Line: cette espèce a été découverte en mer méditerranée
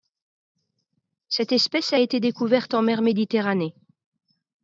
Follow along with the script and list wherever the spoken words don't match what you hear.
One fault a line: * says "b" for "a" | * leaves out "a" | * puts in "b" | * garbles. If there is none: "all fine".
all fine